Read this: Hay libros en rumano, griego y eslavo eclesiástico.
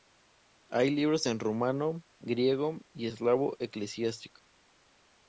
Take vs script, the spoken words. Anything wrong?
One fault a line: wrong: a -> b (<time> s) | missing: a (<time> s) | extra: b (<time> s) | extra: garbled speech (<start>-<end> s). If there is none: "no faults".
no faults